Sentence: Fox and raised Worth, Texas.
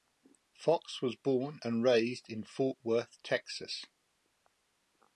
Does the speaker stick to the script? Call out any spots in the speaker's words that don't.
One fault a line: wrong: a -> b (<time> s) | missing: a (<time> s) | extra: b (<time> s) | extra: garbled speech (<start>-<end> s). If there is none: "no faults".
extra: was born (1.0 s)
extra: in Fort (2.3 s)